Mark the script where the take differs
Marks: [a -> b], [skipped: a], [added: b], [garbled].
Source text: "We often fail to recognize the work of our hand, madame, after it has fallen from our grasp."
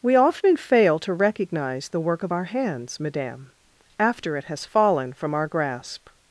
"We often fail to recognize the work of our [hand, -> hands] madame, after it has fallen from our grasp."